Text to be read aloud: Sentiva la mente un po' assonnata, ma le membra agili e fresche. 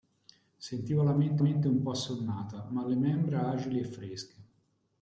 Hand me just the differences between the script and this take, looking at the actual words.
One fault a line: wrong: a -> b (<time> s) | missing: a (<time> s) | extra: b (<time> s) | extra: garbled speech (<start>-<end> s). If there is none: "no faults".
extra: mente (1.4 s)